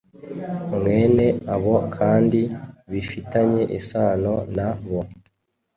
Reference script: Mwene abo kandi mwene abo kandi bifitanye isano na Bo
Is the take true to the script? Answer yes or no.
no